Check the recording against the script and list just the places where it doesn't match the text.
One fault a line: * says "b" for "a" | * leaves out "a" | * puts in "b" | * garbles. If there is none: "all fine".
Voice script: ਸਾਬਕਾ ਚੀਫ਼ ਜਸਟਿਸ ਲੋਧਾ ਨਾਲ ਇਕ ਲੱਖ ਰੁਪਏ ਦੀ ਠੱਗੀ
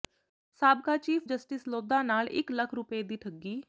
all fine